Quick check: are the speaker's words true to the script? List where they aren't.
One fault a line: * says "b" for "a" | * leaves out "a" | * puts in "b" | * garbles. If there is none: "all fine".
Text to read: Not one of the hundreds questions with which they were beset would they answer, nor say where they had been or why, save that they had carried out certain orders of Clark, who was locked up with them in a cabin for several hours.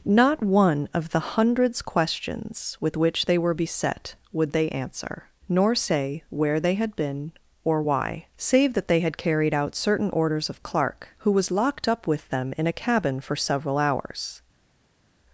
all fine